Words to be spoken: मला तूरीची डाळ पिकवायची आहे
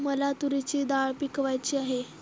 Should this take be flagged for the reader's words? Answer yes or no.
no